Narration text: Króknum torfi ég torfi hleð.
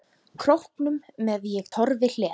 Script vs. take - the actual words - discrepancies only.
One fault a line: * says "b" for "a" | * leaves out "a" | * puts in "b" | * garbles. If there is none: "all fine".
* says "með" for "torfi"